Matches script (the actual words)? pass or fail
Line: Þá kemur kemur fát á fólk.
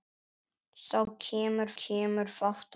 pass